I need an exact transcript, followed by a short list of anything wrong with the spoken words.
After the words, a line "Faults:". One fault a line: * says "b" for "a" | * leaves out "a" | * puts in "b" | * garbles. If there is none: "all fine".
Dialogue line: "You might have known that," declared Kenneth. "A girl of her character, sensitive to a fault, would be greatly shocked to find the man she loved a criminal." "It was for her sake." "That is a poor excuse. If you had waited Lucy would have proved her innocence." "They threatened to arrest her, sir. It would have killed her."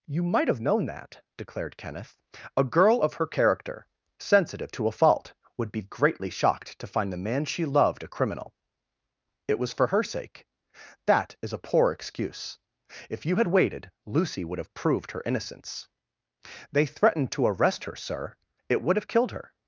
"You might have known that," declared Kenneth. "A girl of her character, sensitive to a fault, would be greatly shocked to find the man she loved a criminal." "It was for her sake." "That is a poor excuse. If you had waited Lucy would have proved her innocence." "They threatened to arrest her, sir. It would have killed her."
Faults:
all fine